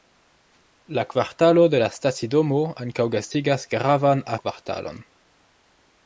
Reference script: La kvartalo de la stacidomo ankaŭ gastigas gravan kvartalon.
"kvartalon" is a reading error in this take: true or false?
false